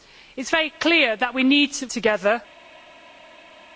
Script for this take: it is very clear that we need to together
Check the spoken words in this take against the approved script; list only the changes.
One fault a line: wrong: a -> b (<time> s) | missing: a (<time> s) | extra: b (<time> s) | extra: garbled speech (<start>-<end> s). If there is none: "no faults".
no faults